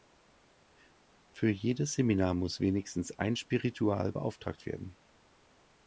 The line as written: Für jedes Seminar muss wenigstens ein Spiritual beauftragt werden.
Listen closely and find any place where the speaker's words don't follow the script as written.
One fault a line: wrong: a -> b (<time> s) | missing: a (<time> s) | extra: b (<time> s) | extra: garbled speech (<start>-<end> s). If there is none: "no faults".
no faults